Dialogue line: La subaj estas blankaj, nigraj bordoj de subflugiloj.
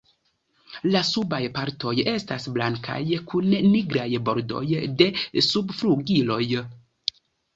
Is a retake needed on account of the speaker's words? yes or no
yes